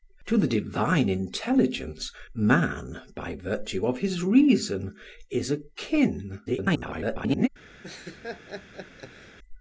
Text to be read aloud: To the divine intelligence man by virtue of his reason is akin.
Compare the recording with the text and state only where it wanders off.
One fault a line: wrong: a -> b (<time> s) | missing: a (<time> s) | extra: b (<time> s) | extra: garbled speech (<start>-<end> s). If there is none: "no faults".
extra: garbled speech (6.5-7.5 s)